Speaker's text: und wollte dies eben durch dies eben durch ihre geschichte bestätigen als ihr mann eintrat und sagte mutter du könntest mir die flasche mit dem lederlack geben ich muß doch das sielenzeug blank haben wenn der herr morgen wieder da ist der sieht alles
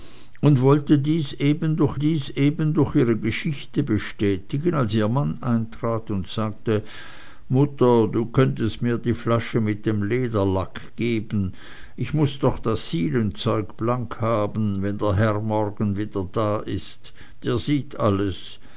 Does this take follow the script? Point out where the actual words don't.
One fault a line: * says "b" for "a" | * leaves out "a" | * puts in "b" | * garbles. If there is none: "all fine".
all fine